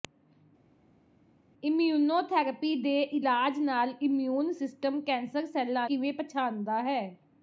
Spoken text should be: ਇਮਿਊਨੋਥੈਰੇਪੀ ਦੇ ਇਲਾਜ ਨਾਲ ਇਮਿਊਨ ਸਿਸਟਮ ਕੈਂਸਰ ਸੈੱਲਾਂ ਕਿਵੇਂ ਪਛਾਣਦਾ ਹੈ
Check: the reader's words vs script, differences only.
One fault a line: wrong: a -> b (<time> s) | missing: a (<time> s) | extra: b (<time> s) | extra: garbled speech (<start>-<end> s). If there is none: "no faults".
no faults